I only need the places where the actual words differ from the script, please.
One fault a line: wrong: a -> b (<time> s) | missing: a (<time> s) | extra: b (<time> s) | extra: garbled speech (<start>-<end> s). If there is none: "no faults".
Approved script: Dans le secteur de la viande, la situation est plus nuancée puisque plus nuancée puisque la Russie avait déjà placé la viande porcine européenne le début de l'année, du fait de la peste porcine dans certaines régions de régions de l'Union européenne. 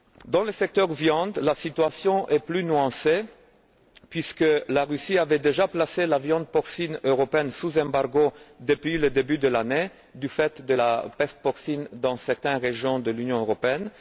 missing: plus nuancée puisque (4.4 s)
extra: sous embargo depuis (7.5 s)
missing: régions de (13.1 s)